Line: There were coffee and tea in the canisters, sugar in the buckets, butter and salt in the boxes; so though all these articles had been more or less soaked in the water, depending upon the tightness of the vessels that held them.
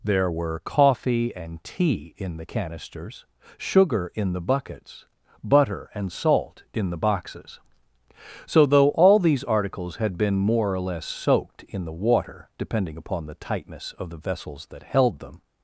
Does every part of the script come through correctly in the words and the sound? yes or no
yes